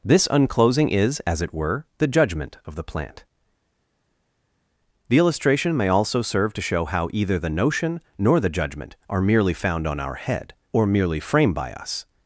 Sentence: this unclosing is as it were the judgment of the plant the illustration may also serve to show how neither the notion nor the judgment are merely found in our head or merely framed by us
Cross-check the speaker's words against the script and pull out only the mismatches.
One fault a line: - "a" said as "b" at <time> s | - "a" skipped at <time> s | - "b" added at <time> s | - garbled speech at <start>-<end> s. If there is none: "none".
- "neither" said as "either" at 7.1 s
- "in" said as "on" at 9.9 s